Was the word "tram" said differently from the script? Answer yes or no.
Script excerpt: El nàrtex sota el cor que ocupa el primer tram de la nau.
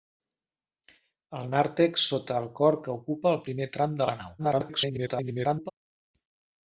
no